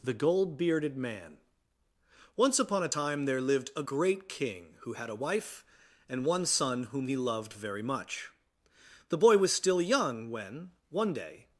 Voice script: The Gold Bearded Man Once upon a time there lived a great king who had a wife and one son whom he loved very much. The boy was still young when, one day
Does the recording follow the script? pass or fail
pass